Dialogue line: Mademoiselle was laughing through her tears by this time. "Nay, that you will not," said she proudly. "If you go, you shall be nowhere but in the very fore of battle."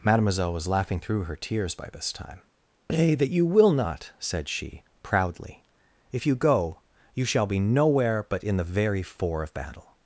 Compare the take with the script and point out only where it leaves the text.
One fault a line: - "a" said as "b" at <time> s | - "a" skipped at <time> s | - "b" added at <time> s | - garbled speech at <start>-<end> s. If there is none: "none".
none